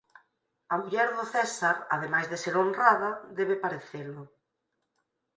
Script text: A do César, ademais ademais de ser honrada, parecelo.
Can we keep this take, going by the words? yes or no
no